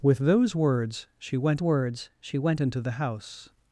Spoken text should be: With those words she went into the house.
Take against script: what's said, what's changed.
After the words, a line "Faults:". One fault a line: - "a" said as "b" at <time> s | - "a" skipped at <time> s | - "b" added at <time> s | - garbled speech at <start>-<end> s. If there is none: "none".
With those words she went words she went into the house.
Faults:
- "words she went" added at 1.6 s